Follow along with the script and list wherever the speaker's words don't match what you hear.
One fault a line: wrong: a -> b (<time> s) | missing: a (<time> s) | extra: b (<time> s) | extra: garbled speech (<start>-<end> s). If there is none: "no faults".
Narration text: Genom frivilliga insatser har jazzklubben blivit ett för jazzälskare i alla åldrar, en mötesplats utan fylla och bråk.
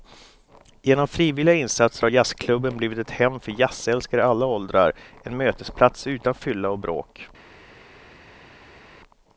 extra: hem (3.1 s)